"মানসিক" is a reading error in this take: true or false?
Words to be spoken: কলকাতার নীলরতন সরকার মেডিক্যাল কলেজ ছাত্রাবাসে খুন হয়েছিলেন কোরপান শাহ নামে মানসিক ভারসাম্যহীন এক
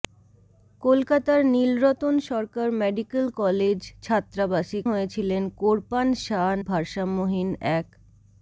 true